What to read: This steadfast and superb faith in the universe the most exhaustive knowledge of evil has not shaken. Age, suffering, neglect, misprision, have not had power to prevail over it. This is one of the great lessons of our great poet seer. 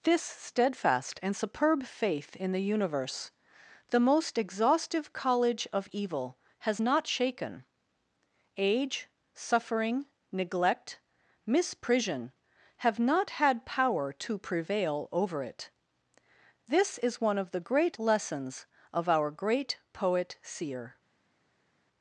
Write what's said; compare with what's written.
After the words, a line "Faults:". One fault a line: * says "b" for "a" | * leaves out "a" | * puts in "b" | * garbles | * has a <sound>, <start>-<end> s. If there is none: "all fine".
This steadfast and superb faith in the universe the most exhaustive college of evil has not shaken. Age, suffering, neglect, misprision, have not had power to prevail over it. This is one of the great lessons of our great poet seer.
Faults:
* says "college" for "knowledge"